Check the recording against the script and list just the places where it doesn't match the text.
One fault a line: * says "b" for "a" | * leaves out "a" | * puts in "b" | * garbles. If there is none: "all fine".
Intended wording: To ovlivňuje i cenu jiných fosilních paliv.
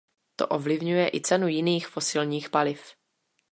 all fine